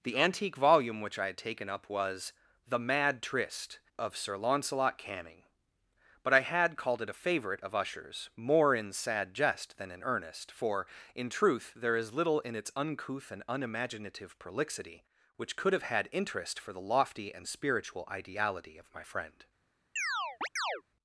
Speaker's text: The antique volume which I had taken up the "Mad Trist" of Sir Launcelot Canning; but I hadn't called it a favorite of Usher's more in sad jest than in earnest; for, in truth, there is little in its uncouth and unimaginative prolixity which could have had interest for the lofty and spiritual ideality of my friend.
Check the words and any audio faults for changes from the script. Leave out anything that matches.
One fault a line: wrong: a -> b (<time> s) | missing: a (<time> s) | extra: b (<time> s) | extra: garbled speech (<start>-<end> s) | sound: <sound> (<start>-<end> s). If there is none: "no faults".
extra: was (1.9 s)
wrong: hadn't -> had (6.4 s)
sound: chirp (20.0-20.8 s)